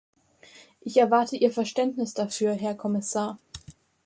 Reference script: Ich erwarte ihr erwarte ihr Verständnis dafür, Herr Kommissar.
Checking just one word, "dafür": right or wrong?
right